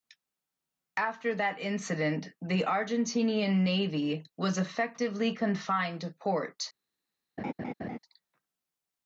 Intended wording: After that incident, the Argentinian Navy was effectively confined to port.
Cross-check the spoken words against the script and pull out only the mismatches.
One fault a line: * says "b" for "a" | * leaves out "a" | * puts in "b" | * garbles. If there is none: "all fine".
all fine